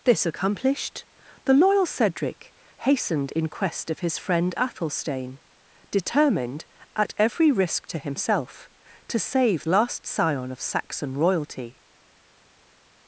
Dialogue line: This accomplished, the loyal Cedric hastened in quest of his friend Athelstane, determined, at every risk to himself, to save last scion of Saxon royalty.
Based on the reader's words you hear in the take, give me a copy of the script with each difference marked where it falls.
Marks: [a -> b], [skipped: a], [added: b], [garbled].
This accomplished, the loyal Cedric hastened in quest of his friend Athelstane, determined, at every risk to himself, to save last scion of Saxon royalty.